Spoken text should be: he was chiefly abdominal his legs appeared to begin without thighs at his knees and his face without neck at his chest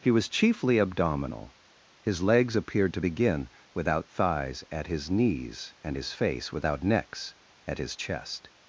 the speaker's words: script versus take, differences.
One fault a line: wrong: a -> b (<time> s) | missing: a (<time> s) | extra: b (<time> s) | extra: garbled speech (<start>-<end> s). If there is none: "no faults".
wrong: neck -> necks (6.8 s)